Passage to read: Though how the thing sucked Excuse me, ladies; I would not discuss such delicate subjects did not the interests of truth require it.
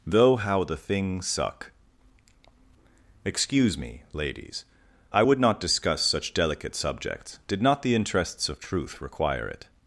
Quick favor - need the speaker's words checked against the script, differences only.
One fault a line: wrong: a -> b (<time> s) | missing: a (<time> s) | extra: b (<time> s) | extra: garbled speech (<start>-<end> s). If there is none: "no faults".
wrong: sucked -> suck (1.2 s)